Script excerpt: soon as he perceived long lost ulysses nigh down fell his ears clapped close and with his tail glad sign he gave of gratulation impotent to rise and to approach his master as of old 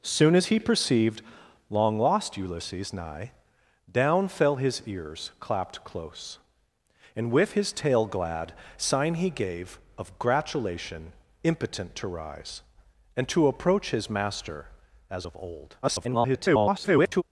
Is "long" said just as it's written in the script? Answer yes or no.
yes